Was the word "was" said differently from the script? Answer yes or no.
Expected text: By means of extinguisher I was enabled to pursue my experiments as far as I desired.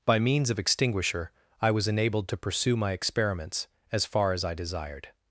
no